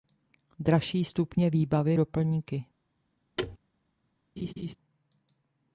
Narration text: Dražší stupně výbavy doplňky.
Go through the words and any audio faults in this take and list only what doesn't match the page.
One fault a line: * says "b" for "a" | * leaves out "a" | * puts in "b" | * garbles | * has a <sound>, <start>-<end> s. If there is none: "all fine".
* has a thud, 3.4-3.6 s
* has a laugh, 4.4-4.8 s